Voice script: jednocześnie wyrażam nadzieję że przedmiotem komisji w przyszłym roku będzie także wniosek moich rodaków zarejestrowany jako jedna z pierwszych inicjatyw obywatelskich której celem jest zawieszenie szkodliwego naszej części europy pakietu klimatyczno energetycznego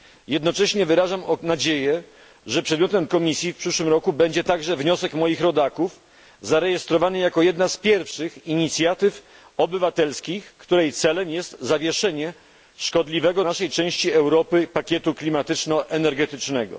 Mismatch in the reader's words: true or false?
false